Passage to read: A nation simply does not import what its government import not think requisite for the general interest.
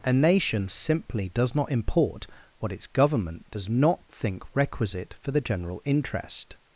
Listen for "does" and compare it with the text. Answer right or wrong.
right